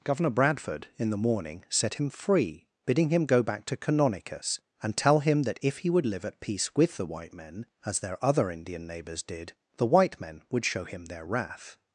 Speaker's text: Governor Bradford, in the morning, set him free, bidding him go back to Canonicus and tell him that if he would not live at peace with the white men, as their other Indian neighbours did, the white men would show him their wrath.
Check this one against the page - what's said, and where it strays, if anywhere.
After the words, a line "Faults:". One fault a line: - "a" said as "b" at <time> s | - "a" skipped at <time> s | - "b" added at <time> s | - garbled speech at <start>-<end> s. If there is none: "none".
Governor Bradford, in the morning, set him free, bidding him go back to Canonicus and tell him that if he would live at peace with the white men, as their other Indian neighbours did, the white men would show him their wrath.
Faults:
- "not" skipped at 6.1 s